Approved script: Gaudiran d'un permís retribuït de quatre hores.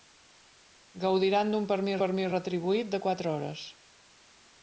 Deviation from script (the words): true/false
true